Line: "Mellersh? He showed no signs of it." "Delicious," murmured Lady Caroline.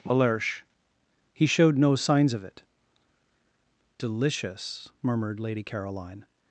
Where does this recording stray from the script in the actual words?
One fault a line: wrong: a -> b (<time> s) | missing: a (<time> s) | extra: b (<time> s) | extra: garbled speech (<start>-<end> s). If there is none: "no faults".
no faults